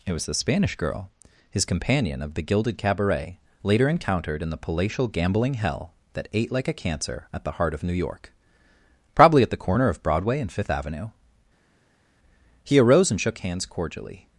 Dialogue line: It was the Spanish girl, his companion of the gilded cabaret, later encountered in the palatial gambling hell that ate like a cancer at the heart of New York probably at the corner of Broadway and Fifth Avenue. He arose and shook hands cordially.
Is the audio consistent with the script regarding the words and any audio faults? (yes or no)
yes